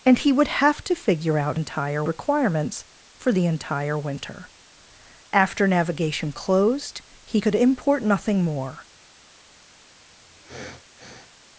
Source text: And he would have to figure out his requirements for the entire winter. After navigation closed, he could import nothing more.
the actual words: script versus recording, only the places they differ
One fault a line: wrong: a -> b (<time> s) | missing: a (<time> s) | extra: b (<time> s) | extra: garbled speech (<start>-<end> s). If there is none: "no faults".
wrong: his -> entire (1.5 s)